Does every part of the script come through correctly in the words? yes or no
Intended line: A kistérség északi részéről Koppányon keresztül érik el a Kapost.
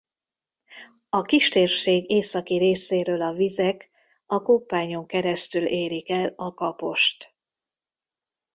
no